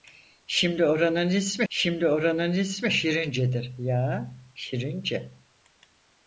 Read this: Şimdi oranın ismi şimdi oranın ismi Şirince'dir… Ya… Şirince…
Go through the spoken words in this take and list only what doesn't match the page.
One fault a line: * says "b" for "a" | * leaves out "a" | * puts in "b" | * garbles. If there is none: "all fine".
all fine